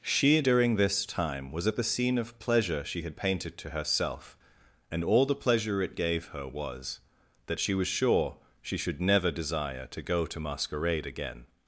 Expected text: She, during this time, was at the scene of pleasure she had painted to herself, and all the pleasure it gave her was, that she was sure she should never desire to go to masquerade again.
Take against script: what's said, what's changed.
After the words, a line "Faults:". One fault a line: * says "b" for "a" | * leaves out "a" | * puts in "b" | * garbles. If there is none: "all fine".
She, during this time, was at the scene of pleasure she had painted to herself, and all the pleasure it gave her was, that she was sure she should never desire to go to masquerade again.
Faults:
all fine